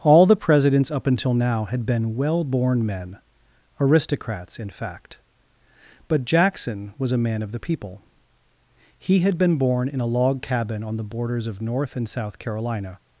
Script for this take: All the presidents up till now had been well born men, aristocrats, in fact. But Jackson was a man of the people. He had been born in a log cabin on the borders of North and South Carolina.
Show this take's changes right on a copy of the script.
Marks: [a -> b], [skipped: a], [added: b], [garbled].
All the presidents up [till -> until] now had been well born men, aristocrats, in fact. But Jackson was a man of the people. He had been born in a log cabin on the borders of North and South Carolina.